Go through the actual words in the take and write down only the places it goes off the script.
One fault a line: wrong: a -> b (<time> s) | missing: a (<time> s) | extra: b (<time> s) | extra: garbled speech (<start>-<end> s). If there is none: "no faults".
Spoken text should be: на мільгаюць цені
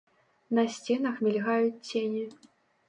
extra: сценах (0.7 s)